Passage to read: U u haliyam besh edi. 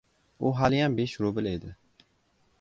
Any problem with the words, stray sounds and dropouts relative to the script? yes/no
yes